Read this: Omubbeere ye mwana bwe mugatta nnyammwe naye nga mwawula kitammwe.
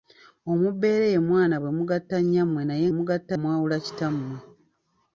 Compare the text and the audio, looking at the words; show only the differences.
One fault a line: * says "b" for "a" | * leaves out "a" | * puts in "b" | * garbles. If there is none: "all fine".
* says "mugatta" for "nga"